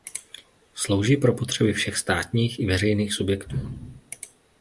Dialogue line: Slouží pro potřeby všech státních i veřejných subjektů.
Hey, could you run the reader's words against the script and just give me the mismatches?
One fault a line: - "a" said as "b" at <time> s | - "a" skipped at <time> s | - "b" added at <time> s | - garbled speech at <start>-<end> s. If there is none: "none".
none